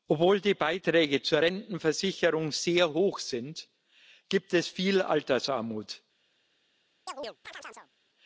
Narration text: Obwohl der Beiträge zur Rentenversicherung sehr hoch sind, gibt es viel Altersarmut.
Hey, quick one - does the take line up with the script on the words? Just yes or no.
no